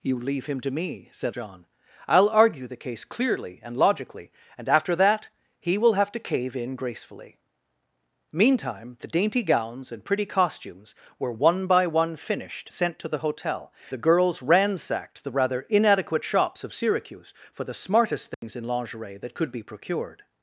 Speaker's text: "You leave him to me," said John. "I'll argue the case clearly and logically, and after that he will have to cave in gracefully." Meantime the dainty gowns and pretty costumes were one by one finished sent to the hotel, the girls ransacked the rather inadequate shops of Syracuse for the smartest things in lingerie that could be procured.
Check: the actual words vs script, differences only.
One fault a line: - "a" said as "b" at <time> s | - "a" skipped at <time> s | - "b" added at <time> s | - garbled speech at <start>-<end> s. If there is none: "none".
none